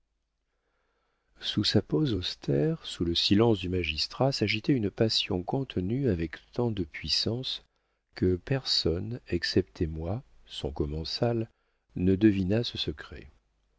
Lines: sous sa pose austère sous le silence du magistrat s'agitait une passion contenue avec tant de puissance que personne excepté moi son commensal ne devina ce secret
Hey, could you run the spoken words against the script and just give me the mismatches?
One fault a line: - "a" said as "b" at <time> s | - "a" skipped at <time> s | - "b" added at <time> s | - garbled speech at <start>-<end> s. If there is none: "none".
none